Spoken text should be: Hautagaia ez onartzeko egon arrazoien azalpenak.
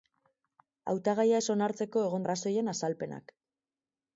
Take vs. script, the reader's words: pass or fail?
pass